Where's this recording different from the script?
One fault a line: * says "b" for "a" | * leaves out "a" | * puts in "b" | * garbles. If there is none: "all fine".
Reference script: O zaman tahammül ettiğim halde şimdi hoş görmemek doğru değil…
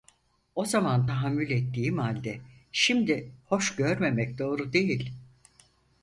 all fine